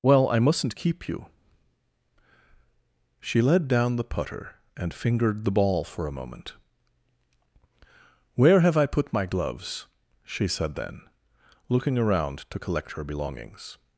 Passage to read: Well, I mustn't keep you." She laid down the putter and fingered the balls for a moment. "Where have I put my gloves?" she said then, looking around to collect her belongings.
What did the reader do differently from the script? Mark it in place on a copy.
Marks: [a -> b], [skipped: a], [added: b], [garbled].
Well, I mustn't keep you." She [laid -> led] down the putter and fingered the [balls -> ball] for a moment. "Where have I put my gloves?" she said then, looking around to collect her belongings.